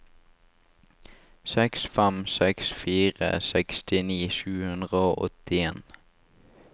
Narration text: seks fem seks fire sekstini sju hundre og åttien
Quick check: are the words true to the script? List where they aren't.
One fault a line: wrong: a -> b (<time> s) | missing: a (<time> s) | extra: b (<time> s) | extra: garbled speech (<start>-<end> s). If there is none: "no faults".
no faults